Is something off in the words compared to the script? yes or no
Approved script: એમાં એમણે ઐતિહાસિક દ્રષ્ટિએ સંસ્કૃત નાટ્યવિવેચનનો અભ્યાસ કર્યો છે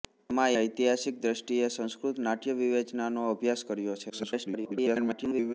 yes